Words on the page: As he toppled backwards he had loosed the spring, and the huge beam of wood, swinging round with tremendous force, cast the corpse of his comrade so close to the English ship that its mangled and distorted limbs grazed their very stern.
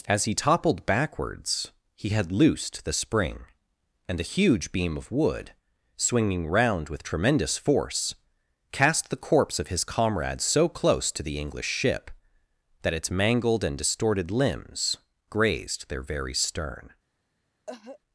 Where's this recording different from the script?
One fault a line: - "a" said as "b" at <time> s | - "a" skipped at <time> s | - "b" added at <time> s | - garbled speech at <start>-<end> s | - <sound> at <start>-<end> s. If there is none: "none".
- "the" said as "a" at 4.2 s
- cough at 17.7-18.0 s